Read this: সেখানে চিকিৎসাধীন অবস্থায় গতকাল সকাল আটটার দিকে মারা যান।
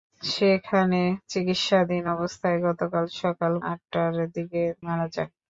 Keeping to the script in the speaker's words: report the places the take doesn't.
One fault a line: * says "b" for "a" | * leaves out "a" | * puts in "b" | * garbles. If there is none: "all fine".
all fine